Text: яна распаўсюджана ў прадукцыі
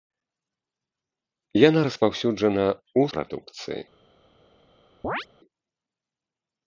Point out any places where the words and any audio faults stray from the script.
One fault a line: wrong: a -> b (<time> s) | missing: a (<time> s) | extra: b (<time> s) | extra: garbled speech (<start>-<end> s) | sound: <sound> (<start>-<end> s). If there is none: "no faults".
sound: chirp (5.0-5.3 s)